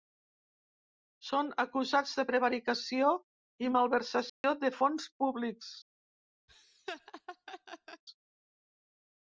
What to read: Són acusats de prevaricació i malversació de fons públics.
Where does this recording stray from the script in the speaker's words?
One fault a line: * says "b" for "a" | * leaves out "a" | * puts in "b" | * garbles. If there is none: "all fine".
all fine